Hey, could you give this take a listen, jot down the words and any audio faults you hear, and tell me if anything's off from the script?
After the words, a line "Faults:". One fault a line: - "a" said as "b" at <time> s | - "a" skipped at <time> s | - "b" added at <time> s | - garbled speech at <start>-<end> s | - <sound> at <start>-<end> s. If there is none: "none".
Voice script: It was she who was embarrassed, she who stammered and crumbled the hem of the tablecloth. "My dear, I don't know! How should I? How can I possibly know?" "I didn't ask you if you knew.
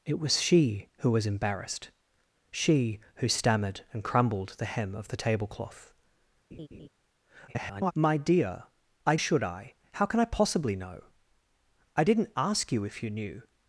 It was she who was embarrassed, she who stammered and crumbled the hem of the tablecloth. [garbled] "My dear, I should I? How can I possibly know?" "I didn't ask you if you knew.
Faults:
- laugh at 6.5-6.9 s
- garbled speech at 7.5-7.9 s
- "don't know How" skipped at 9.2 s